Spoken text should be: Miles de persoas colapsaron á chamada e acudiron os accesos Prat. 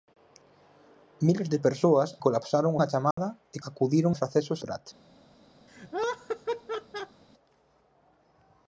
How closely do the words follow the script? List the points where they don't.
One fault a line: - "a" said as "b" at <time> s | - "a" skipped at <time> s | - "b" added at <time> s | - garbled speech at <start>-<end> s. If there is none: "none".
none